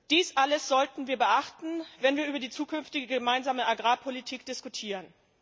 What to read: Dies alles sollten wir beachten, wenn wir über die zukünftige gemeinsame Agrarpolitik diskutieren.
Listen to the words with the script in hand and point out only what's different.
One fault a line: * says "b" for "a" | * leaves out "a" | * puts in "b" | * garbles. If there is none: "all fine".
all fine